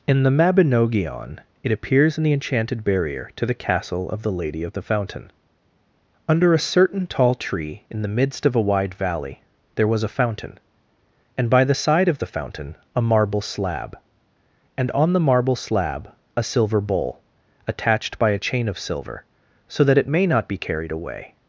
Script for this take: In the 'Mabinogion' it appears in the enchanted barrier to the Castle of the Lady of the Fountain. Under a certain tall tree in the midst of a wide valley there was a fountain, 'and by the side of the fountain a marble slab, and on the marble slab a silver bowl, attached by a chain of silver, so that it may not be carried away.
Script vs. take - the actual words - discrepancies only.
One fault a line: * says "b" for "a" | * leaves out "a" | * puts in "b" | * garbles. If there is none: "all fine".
all fine